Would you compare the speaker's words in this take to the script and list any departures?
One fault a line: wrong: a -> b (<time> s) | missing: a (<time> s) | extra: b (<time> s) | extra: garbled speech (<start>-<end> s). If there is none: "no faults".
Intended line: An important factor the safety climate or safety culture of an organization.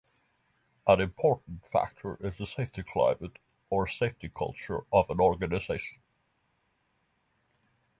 extra: is (2.2 s)